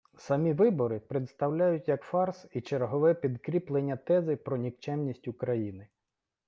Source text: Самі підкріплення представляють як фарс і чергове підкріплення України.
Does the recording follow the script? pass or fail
fail